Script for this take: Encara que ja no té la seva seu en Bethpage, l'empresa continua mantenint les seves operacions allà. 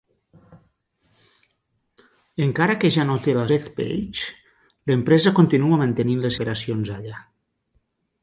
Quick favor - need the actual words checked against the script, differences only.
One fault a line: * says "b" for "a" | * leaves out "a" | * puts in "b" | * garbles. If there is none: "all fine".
* leaves out "seva seu en"
* leaves out "seves"